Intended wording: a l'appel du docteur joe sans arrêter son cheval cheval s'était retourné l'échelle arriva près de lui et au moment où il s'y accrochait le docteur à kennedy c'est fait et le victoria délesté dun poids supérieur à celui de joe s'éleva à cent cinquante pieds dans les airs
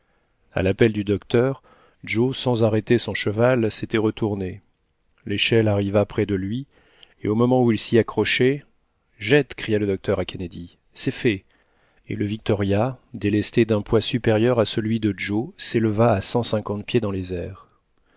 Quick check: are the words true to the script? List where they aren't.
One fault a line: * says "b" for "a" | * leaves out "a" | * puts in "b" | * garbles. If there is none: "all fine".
* leaves out "cheval"
* puts in "jette cria"